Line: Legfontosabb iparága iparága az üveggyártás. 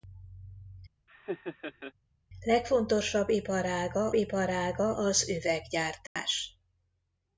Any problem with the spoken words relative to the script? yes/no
no